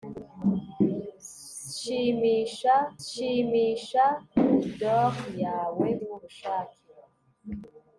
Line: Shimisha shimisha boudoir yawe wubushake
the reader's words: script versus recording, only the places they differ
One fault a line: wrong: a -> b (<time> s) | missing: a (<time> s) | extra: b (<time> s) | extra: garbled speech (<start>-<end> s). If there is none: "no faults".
no faults